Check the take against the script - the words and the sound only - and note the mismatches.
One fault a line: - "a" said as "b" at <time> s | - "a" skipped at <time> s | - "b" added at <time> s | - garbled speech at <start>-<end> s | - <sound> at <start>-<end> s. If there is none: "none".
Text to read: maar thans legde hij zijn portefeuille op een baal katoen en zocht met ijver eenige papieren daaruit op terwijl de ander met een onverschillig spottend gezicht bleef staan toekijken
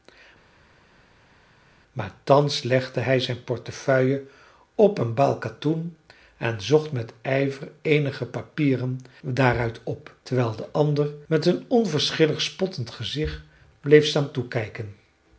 none